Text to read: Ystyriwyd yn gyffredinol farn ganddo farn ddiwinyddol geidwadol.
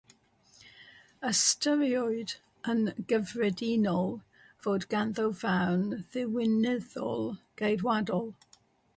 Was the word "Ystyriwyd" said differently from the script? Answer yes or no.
no